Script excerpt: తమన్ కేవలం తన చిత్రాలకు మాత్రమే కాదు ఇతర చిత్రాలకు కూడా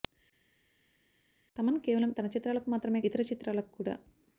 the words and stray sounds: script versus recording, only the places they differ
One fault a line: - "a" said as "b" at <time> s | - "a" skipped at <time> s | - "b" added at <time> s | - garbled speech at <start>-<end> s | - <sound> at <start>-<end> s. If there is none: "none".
- "కాదు" skipped at 3.0 s